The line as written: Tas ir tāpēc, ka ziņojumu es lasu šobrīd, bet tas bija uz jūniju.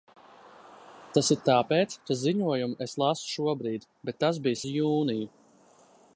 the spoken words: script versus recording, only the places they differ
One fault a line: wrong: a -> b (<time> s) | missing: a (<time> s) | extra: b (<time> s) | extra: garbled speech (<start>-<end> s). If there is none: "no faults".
no faults